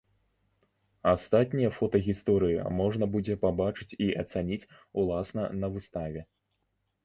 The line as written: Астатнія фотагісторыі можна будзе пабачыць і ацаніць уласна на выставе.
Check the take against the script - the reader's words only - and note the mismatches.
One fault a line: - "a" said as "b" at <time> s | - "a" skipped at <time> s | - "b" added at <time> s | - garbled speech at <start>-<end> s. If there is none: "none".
none